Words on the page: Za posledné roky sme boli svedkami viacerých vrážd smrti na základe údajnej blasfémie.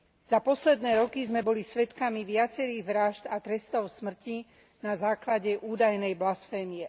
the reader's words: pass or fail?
fail